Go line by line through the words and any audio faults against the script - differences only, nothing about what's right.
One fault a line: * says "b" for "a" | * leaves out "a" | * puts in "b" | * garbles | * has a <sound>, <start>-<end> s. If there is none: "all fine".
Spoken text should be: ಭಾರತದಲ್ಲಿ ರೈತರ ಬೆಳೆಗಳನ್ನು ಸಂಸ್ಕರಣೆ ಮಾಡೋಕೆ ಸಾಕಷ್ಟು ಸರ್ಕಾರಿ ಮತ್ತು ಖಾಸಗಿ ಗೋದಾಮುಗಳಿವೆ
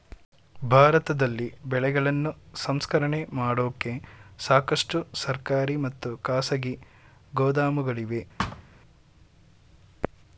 * leaves out "ರೈತರ"
* has a thud, 8.4-8.6 s